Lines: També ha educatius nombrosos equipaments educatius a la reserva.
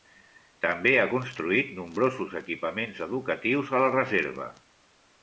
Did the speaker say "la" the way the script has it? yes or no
yes